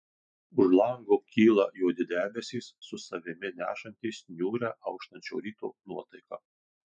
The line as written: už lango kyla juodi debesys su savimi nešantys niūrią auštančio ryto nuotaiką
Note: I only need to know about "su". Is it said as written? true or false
true